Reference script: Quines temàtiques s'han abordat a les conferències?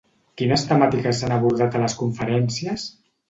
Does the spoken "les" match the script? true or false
true